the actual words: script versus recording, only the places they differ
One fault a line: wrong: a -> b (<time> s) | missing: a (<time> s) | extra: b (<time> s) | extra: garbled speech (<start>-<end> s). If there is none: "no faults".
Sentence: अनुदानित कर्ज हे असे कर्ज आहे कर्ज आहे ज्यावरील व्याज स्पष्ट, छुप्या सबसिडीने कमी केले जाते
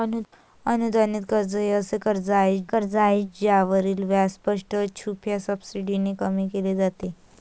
no faults